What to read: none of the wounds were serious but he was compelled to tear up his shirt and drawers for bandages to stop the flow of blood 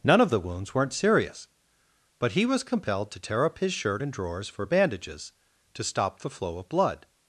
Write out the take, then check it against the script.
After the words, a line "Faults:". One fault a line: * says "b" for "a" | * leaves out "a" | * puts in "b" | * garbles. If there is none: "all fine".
none of the wounds weren't serious but he was compelled to tear up his shirt and drawers for bandages to stop the flow of blood
Faults:
* says "weren't" for "were"